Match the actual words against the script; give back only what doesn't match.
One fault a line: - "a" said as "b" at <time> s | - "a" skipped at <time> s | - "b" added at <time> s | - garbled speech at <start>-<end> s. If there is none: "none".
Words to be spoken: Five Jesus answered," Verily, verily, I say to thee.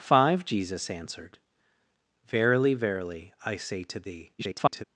- garbled speech at 4.4-4.8 s